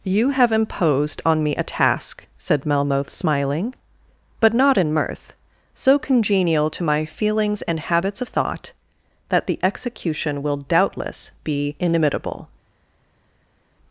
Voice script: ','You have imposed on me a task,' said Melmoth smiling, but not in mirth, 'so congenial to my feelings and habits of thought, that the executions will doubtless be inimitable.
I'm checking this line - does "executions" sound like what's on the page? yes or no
no